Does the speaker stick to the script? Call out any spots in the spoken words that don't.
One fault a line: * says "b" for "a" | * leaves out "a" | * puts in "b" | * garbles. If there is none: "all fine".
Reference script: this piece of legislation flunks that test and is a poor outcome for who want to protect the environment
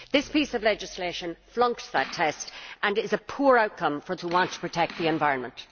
all fine